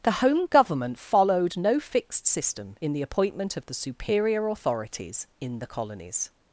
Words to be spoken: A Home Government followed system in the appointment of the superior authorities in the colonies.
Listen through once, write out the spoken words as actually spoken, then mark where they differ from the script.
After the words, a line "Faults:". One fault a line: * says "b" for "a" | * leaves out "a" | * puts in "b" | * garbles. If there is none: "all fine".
The Home Government followed no fixed system in the appointment of the superior authorities in the colonies.
Faults:
* says "The" for "A"
* puts in "no fixed"